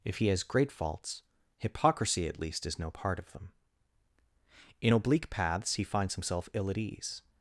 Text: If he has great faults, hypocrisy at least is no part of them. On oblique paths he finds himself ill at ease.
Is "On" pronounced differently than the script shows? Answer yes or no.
yes